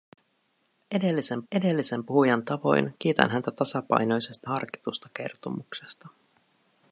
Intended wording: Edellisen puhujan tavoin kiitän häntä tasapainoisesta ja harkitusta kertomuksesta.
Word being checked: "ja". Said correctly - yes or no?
no